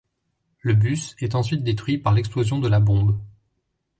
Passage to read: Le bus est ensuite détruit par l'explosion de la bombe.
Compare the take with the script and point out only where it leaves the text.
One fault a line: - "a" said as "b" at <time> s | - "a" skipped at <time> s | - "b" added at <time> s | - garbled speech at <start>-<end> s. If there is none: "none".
none